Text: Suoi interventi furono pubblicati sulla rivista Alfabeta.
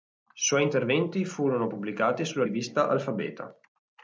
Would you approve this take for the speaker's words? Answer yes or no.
yes